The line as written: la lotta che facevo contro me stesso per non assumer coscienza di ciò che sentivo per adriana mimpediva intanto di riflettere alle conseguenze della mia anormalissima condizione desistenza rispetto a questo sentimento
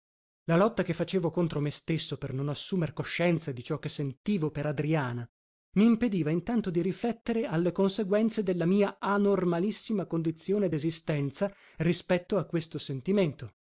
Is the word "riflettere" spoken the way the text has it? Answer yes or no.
yes